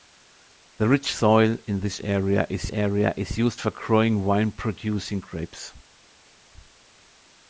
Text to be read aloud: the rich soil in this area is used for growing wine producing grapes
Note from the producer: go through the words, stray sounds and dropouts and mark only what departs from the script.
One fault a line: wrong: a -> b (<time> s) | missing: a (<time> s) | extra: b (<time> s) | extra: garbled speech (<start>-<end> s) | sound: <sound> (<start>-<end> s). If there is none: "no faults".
extra: area is (2.7 s)